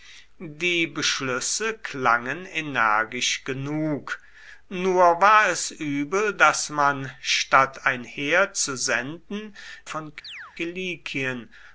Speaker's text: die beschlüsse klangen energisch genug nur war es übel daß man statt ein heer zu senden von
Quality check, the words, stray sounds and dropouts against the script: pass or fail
fail